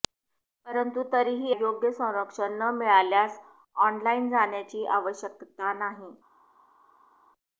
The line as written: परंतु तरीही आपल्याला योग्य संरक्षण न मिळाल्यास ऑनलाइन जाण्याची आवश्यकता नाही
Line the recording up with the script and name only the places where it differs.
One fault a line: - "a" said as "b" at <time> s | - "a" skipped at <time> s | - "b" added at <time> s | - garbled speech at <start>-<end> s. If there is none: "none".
- "आपल्याला" skipped at 1.5 s